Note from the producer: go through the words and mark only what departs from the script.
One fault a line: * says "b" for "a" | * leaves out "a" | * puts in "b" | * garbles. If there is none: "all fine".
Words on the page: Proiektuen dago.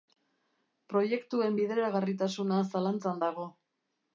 * puts in "bideragarritasuna zalantzan"